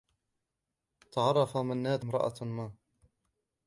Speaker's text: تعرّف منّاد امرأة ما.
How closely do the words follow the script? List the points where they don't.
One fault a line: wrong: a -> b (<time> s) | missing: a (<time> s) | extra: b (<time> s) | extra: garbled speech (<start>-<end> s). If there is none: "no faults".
no faults